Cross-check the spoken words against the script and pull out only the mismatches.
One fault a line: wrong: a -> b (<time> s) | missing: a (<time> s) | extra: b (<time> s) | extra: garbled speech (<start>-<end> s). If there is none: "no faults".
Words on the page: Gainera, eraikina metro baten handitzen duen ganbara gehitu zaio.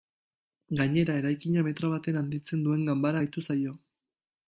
no faults